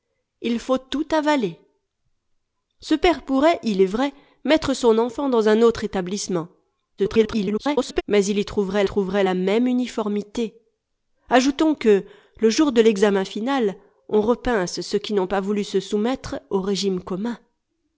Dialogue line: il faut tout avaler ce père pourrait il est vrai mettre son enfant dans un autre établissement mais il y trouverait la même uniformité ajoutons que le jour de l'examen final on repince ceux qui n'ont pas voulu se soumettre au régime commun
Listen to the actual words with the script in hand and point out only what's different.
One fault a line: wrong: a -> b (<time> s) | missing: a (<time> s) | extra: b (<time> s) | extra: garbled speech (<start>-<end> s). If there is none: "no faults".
extra: garbled speech (7.0-8.0 s)
extra: trouverait (8.8 s)